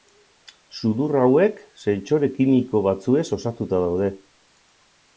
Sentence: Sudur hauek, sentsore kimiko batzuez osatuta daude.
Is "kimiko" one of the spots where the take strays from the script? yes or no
no